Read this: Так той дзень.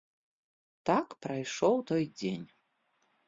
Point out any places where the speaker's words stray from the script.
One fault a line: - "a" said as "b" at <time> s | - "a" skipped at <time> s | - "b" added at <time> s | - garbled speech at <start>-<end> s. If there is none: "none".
- "прайшоў" added at 1.2 s